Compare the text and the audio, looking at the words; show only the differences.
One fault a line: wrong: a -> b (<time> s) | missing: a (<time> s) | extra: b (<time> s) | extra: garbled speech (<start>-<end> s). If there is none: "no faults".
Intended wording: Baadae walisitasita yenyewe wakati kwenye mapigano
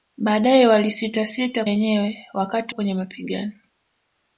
no faults